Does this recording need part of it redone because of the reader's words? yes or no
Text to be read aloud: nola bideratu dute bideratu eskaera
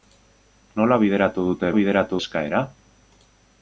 no